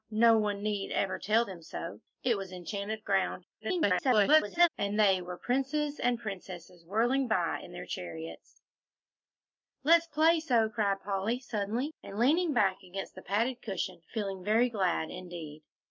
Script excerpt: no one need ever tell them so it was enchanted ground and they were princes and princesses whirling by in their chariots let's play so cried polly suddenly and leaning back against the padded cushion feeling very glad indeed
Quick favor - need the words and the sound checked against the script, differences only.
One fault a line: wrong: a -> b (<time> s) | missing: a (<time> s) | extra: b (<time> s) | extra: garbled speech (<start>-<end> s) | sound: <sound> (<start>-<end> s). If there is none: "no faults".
extra: garbled speech (3.6-4.7 s)